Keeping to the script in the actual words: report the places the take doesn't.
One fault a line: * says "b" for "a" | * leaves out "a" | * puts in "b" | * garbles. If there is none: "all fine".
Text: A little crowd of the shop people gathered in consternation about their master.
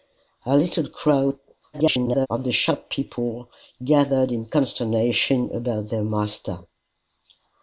* garbles